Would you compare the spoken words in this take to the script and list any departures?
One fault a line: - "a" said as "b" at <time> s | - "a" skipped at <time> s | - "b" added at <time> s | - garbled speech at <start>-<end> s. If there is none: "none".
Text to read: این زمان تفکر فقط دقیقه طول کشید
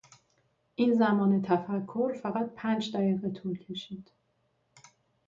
- "پنج" added at 2.5 s